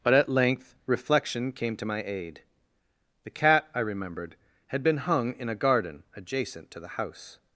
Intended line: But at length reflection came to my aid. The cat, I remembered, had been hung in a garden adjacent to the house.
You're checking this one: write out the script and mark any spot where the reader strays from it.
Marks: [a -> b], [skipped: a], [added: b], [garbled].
But at length reflection came to my aid. The cat, I remembered, had been hung in a garden adjacent to the house.